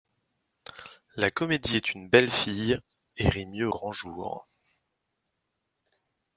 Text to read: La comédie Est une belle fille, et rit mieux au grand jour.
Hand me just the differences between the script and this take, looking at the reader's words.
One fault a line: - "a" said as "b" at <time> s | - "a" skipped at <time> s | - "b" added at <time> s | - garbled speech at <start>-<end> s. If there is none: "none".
- "au" skipped at 3.7 s